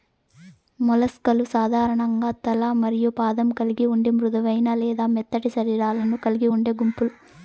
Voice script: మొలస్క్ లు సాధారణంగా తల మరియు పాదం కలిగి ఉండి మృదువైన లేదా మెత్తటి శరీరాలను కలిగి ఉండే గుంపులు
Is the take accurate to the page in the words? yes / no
yes